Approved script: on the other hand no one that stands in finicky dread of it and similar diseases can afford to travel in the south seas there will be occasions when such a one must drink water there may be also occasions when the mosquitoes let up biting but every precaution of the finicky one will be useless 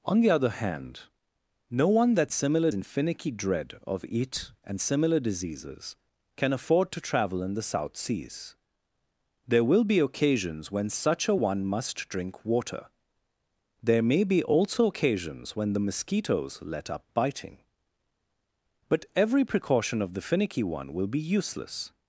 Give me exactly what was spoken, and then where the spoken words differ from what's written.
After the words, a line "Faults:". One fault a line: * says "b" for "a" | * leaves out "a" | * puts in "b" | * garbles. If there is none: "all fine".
on the other hand no one that similar in finicky dread of it and similar diseases can afford to travel in the south seas there will be occasions when such a one must drink water there may be also occasions when the mosquitoes let up biting but every precaution of the finicky one will be useless
Faults:
* says "similar" for "stands"